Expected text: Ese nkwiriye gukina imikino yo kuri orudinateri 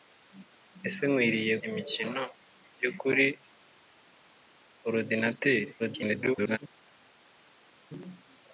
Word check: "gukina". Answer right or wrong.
wrong